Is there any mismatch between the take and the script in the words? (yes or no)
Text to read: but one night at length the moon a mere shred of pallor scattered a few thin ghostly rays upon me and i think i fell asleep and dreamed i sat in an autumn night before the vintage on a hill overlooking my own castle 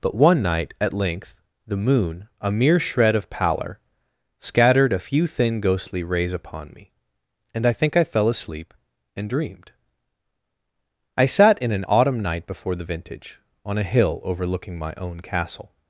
no